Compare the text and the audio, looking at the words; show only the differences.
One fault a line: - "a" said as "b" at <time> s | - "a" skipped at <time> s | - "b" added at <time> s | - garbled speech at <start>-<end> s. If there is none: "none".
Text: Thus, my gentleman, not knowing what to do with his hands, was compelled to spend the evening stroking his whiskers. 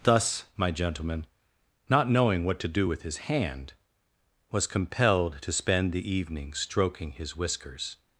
- "hands" said as "hand" at 3.2 s